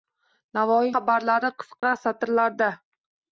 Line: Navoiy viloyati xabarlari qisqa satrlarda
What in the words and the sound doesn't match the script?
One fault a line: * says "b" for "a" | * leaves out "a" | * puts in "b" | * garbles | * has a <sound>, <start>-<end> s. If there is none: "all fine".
* leaves out "viloyati"
* has a dropout, 1.8-1.8 s